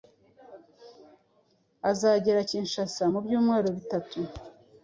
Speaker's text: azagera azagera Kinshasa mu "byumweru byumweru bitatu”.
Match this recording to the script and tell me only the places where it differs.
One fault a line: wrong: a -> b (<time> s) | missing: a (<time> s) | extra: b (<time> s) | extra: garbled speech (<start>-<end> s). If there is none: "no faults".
missing: azagera (2.5 s)
missing: byumweru (3.7 s)